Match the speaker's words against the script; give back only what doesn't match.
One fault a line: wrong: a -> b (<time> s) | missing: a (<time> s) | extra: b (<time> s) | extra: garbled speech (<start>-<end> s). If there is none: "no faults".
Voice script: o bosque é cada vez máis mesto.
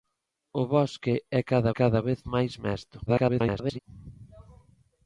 extra: cada (1.7 s)
extra: garbled speech (3.1-3.8 s)